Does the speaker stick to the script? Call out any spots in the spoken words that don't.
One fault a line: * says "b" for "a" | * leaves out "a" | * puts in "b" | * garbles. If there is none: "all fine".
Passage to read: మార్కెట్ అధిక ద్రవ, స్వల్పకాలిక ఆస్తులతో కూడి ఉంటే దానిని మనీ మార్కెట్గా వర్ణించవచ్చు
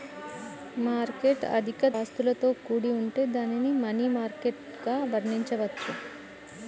* leaves out "ద్రవ స్వల్పకాలిక"